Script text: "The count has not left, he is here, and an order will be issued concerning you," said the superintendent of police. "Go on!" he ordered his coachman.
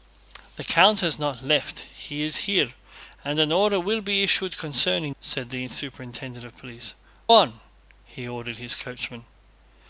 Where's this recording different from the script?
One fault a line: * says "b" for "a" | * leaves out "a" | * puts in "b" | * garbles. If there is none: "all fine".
* leaves out "you"
* leaves out "Go"